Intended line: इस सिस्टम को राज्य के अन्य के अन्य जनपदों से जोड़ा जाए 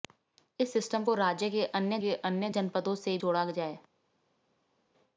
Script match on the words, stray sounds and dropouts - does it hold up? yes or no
yes